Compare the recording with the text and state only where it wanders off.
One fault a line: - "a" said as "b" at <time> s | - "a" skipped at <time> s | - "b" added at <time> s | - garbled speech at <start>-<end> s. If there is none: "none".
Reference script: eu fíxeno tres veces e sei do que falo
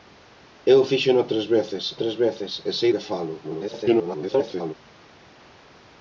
- "tres veces" added at 2.0 s
- "do" skipped at 2.9 s
- garbled speech at 3.4-4.7 s